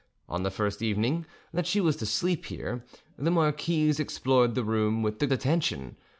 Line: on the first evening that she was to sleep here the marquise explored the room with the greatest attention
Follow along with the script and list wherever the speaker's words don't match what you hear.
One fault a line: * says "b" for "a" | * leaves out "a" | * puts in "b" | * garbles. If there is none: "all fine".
* leaves out "greatest"